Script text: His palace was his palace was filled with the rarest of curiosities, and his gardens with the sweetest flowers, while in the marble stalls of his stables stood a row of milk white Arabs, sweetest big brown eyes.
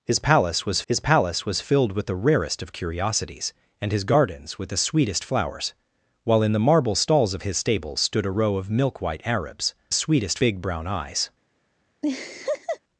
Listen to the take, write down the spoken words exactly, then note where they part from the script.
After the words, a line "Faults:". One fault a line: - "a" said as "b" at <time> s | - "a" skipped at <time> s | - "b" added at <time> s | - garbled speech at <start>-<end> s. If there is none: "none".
His palace was his palace was filled with the rarest of curiosities, and his gardens with the sweetest flowers, while in the marble stalls of his stables stood a row of milk white Arabs, sweetest big brown eyes.
Faults:
none